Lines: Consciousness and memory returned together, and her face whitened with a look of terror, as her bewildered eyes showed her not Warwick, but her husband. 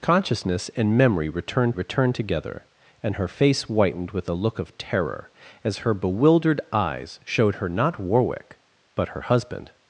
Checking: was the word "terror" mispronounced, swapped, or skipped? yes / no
no